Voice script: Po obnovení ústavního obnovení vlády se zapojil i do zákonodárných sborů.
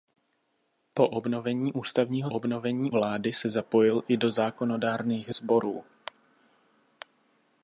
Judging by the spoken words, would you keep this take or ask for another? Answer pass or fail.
pass